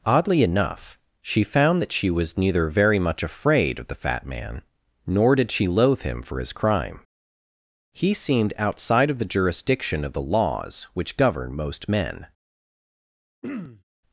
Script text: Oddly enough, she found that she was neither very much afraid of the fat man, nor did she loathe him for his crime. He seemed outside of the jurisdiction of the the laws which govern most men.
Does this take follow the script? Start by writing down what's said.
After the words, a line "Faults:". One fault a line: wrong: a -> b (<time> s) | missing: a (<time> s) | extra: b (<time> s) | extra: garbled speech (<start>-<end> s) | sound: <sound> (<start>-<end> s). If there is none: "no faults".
Oddly enough, she found that she was neither very much afraid of the fat man, nor did she loathe him for his crime. He seemed outside of the jurisdiction of the laws which govern most men.
Faults:
missing: the (10.3 s)
sound: throat clearing (13.4-13.8 s)